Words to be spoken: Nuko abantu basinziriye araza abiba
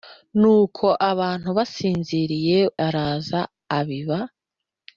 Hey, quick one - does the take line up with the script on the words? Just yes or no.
yes